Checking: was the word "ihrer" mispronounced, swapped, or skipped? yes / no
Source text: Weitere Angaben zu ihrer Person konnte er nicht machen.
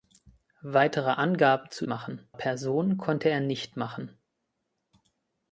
yes